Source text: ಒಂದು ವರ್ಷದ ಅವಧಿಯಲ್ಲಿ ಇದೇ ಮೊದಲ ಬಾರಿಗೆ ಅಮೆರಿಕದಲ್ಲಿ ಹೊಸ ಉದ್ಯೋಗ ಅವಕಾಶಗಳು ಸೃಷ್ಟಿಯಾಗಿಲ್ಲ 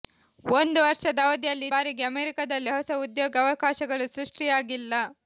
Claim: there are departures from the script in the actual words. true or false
true